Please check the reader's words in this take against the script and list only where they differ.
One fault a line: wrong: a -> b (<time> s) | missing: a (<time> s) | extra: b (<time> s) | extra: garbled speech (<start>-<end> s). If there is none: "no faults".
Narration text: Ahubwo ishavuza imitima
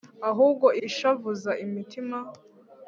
no faults